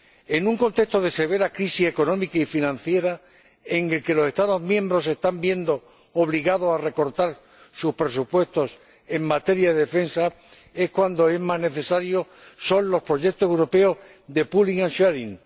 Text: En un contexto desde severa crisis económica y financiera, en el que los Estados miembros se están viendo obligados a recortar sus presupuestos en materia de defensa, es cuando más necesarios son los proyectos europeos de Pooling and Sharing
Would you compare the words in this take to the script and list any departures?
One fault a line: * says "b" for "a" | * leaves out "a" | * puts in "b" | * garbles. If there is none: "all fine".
* says "de" for "desde"